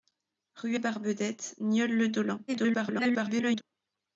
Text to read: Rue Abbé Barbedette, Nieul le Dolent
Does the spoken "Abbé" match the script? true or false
false